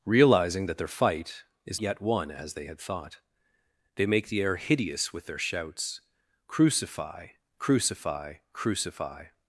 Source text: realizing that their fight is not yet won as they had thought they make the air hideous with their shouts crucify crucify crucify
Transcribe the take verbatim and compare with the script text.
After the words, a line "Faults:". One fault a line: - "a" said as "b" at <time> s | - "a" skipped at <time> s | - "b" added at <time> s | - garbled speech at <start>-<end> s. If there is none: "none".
realizing that their fight is yet won as they had thought they make the air hideous with their shouts crucify crucify crucify
Faults:
- "not" skipped at 1.8 s